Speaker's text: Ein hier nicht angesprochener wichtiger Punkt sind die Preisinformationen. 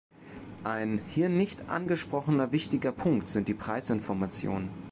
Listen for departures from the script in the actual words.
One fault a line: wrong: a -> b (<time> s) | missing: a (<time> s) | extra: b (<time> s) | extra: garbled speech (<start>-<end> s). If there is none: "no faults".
no faults